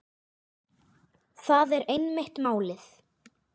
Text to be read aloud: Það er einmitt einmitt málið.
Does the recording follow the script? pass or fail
fail